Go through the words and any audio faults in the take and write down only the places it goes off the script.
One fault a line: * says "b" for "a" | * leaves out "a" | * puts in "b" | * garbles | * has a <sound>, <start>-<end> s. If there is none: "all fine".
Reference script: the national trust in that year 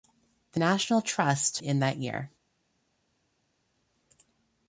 all fine